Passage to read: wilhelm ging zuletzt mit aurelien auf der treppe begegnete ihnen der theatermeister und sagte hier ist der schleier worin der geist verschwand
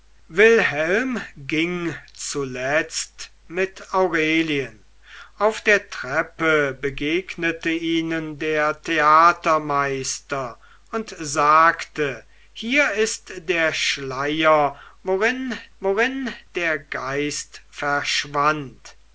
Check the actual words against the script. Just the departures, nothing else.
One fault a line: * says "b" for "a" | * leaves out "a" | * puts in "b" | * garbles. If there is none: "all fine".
* puts in "worin"